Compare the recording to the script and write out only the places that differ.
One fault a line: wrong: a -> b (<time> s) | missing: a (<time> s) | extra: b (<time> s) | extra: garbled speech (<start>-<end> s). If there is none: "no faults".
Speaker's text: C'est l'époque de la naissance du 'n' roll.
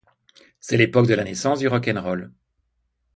extra: rock (1.7 s)